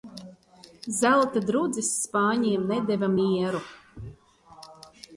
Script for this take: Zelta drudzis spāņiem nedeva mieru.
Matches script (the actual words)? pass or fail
pass